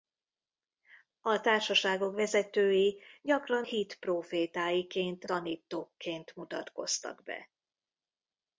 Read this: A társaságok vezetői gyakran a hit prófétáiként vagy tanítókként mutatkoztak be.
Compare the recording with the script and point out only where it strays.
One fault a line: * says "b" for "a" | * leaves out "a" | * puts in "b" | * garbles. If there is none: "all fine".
* leaves out "a"
* leaves out "vagy"